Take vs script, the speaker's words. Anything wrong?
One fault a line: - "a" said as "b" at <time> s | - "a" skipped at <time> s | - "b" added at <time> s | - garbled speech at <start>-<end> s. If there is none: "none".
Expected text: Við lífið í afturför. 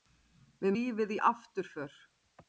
none